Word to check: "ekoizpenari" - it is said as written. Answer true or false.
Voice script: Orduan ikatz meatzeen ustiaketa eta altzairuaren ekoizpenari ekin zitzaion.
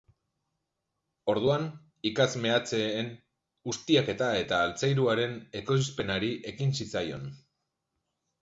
true